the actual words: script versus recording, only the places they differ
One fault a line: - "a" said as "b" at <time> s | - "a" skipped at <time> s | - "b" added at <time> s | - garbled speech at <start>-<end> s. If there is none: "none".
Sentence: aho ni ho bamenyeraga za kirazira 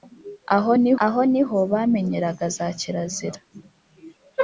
- "aho ni" added at 1.0 s